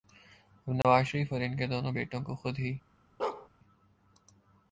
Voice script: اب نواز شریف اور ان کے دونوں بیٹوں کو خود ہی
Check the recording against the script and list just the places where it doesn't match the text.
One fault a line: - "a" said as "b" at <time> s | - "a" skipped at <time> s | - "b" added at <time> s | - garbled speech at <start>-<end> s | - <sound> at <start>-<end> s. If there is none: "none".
- dropout at 0.8-0.8 s
- bark at 3.2-3.5 s